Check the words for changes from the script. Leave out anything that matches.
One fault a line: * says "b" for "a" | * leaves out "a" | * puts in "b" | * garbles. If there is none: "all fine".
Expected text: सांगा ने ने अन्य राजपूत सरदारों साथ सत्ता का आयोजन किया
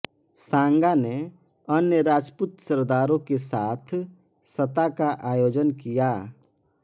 * leaves out "ने"
* puts in "के"